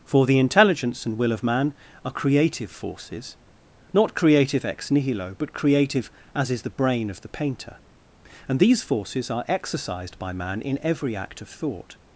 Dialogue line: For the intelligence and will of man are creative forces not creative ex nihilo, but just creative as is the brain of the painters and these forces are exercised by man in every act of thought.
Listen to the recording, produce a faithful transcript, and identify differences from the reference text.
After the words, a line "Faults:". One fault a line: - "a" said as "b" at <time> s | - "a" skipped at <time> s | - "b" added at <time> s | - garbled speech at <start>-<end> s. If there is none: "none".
For the intelligence and will of man are creative forces not creative ex nihilo, but creative as is the brain of the painter and these forces are exercised by man in every act of thought.
Faults:
- "just" skipped at 5.5 s
- "painters" said as "painter" at 7.3 s